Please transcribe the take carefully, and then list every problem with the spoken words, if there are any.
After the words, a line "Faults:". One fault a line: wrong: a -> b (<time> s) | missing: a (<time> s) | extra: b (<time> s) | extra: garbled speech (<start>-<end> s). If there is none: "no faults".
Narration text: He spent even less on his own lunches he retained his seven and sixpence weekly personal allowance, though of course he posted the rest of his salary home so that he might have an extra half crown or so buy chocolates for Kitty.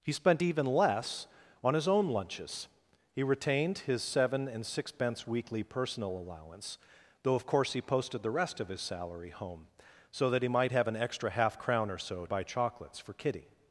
He spent even less on his own lunches he retained his seven and sixpence weekly personal allowance, though of course he posted the rest of his salary home so that he might have an extra half crown or so buy chocolates for Kitty.
Faults:
no faults